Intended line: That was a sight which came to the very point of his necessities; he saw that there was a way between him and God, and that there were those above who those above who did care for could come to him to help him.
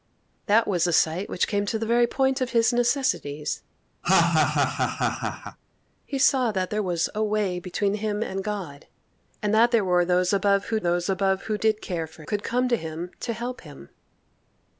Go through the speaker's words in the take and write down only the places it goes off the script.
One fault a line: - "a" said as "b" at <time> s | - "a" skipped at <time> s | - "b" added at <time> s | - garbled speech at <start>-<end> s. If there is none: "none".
none